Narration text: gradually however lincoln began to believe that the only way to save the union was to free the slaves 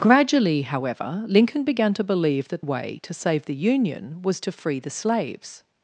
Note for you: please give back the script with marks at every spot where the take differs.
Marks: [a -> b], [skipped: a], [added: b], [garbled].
gradually however lincoln began to believe that [skipped: the only] way to save the union was to free the slaves